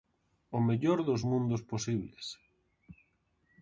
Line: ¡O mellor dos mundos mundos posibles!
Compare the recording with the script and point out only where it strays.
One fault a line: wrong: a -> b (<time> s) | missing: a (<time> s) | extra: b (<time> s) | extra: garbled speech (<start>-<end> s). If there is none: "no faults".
missing: mundos (1.6 s)